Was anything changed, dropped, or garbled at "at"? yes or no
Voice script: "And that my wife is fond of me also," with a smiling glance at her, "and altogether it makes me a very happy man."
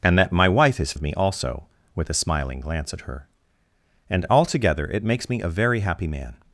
no